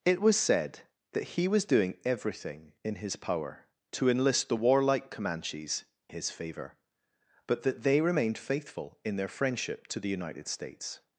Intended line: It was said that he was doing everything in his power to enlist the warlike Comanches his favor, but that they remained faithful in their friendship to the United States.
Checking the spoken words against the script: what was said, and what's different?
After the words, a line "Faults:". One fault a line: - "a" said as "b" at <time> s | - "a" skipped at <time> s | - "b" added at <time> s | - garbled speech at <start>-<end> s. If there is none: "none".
It was said that he was doing everything in his power to enlist the warlike Comanches his favor, but that they remained faithful in their friendship to the United States.
Faults:
none